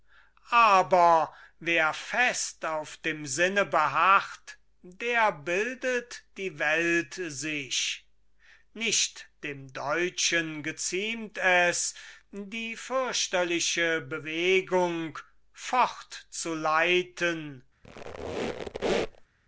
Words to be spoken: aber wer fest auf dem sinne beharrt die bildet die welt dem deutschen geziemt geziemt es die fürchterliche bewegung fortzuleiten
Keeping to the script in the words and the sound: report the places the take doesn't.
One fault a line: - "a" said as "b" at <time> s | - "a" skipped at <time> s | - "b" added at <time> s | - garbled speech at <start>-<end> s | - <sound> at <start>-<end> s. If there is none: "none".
- "die" said as "der" at 4.8 s
- "sich nicht" added at 7.1 s
- "geziemt" skipped at 11.4 s
- squeak at 17.8-19.3 s